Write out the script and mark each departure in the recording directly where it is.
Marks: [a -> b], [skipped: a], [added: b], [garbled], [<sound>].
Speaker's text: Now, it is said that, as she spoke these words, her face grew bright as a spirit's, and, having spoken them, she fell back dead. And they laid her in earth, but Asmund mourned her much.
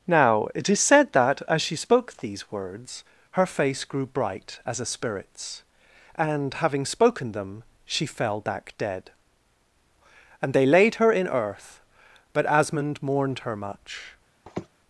Now, it is said that, as she spoke these words, her face grew bright as a spirit's, and, having spoken them, she fell back dead. And they laid her in earth, but Asmund mourned her much. [sniff]